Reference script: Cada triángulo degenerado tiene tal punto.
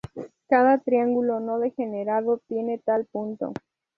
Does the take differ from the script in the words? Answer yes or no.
yes